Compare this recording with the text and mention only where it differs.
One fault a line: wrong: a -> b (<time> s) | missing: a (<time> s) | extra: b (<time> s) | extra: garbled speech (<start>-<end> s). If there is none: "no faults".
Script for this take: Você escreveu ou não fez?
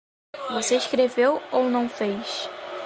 no faults